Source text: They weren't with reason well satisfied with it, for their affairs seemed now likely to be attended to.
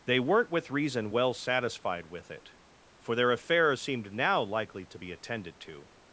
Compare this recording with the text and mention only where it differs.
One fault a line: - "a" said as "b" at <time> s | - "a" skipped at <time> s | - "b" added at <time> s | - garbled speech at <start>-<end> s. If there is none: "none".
none